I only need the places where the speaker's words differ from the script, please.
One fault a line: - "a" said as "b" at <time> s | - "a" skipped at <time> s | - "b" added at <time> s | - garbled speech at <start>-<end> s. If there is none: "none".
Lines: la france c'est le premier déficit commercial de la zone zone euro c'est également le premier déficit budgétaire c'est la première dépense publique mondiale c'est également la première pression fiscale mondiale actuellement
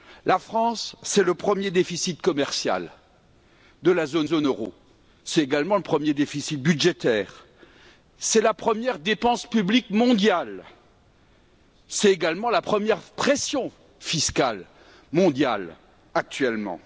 none